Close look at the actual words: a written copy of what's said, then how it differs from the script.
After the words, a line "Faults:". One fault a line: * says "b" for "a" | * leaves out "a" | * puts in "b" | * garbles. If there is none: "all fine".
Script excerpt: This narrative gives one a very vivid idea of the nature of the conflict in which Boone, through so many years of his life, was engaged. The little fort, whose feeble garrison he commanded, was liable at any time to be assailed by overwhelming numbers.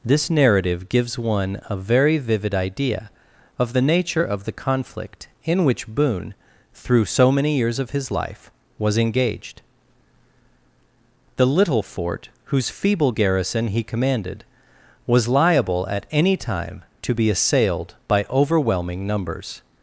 This narrative gives one a very vivid idea of the nature of the conflict in which Boone, through so many years of his life, was engaged. The little fort, whose feeble garrison he commanded, was liable at any time to be assailed by overwhelming numbers.
Faults:
all fine